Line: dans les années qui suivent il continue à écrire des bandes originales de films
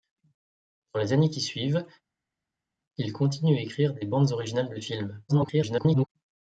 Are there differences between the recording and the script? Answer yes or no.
yes